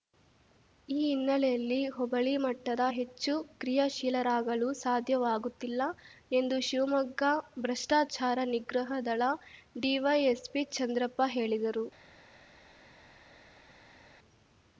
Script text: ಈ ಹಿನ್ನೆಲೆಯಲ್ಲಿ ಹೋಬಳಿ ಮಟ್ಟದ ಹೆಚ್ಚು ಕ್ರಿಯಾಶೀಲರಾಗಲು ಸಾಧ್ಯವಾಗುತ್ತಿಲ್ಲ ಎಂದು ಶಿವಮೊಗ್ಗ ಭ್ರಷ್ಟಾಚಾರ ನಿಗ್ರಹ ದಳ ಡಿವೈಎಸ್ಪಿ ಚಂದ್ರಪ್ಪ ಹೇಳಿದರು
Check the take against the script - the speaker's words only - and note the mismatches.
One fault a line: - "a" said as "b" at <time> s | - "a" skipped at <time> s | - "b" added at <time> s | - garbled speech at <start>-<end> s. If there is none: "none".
none